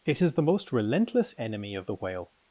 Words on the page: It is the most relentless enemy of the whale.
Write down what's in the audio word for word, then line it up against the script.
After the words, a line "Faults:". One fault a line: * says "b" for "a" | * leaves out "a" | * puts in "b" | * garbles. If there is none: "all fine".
It is the most relentless enemy of the whale.
Faults:
all fine